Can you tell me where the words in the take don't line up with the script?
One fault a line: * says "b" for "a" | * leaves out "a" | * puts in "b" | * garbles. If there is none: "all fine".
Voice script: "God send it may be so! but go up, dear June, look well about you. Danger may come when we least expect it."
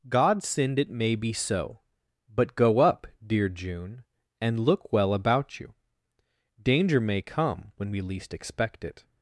* puts in "and"